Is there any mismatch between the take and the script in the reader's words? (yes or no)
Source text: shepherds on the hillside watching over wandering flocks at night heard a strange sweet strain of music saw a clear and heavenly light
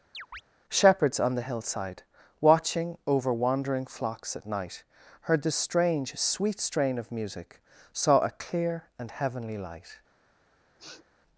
yes